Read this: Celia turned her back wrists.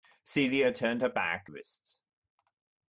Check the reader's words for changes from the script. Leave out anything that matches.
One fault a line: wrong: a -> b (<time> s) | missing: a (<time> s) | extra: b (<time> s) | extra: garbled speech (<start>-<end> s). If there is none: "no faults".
no faults